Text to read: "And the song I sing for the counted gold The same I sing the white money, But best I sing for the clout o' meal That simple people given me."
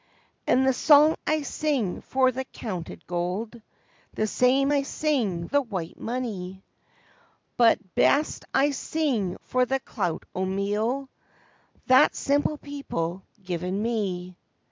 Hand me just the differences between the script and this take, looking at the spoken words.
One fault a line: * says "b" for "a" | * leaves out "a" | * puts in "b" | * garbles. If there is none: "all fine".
all fine